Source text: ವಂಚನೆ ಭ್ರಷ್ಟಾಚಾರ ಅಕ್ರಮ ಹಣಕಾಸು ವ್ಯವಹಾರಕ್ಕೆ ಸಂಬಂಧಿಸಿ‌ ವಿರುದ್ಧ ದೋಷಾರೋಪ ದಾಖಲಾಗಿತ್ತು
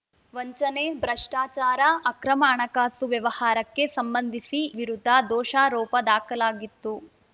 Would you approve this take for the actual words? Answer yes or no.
yes